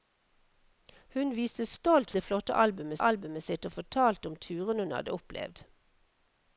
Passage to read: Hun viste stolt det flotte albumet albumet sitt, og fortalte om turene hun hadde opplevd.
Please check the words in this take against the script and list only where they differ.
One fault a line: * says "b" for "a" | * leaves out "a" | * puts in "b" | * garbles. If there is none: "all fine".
all fine